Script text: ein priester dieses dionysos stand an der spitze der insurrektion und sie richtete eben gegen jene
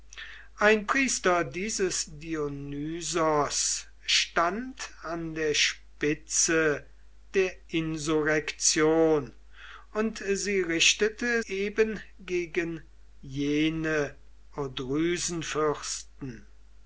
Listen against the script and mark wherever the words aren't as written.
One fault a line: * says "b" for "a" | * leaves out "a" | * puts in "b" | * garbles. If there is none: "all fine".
all fine